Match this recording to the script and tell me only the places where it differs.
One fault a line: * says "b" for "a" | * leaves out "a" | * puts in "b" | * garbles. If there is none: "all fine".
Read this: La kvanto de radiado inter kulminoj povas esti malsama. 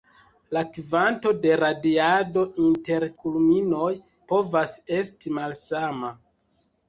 all fine